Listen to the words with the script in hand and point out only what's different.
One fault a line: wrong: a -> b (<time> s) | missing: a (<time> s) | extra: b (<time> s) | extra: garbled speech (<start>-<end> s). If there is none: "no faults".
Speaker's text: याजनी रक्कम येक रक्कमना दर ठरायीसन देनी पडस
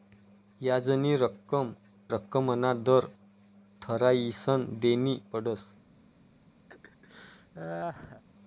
missing: येक (1.7 s)